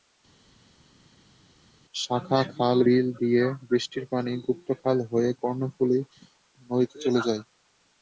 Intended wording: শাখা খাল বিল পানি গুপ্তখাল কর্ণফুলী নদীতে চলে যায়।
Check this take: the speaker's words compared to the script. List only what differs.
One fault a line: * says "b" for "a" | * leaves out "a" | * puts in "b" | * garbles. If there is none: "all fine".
* puts in "দিয়ে বৃষ্টির"
* puts in "হয়ে"